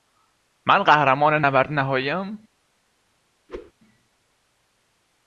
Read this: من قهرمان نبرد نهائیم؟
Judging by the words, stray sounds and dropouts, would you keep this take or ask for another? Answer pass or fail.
fail